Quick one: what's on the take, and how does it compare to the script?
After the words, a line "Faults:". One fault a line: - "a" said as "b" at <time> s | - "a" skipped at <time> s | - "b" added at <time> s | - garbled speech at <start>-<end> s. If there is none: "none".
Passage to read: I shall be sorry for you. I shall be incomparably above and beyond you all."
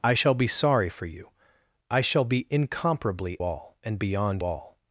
I shall be sorry for you. I shall be incomparably all and beyond all."
Faults:
- "above" said as "all" at 3.4 s
- "you" skipped at 4.4 s